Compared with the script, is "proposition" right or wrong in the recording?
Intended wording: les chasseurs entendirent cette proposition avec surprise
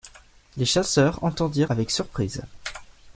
wrong